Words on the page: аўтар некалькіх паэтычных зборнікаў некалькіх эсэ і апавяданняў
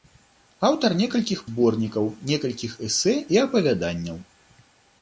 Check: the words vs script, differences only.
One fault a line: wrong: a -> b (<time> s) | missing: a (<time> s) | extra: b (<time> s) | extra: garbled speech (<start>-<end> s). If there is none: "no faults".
missing: паэтычных (1.4 s)